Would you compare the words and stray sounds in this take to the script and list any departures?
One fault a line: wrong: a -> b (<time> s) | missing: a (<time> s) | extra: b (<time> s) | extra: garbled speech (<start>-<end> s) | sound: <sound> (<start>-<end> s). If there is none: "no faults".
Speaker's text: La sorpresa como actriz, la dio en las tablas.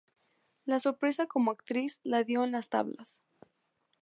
no faults